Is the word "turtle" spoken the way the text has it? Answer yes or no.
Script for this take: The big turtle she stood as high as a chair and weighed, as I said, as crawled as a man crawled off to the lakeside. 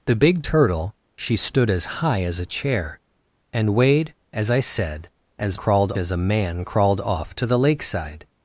yes